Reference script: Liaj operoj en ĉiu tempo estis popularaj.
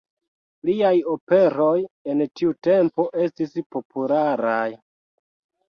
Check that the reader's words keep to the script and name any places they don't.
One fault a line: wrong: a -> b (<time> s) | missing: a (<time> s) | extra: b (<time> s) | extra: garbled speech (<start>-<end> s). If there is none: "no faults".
wrong: ĉiu -> tiu (2.4 s)